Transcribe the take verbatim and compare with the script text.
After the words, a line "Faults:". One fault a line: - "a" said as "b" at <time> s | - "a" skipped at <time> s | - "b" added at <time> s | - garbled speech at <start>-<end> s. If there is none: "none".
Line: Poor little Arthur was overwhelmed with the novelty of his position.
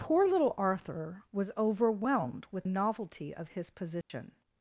Poor little Arthur was overwhelmed with novelty of his position.
Faults:
- "the" skipped at 2.6 s